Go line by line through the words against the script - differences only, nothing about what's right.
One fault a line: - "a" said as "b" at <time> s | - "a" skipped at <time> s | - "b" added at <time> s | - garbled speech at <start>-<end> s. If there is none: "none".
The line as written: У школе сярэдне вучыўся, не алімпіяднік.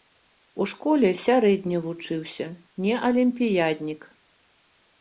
none